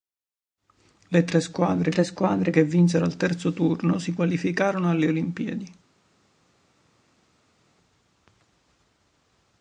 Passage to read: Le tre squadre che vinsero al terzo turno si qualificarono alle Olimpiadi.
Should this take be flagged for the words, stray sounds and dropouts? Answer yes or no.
yes